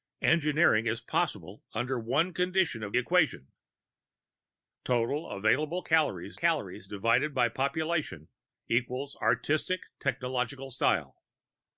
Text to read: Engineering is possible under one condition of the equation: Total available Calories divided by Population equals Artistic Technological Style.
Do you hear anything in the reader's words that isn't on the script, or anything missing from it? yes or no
yes